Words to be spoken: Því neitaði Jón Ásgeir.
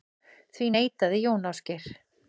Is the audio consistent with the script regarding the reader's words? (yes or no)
yes